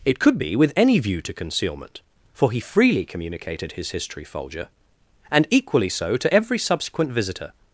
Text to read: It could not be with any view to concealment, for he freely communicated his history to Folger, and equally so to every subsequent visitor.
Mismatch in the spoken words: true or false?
true